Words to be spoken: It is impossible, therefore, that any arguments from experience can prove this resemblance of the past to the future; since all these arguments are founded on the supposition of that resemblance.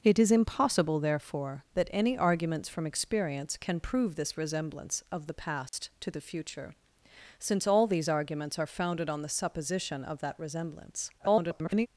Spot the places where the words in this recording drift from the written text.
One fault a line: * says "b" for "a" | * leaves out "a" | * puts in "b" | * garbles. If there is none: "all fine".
* garbles